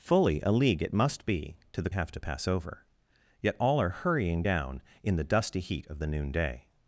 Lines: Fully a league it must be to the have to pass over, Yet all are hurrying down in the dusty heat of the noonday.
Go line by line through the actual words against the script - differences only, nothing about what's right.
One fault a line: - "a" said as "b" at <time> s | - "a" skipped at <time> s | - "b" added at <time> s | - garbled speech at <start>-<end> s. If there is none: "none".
none